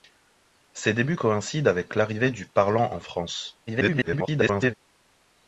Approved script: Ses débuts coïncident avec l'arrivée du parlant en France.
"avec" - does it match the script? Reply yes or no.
yes